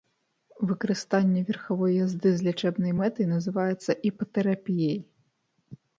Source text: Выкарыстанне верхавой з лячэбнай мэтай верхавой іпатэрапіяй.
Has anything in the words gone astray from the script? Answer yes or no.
yes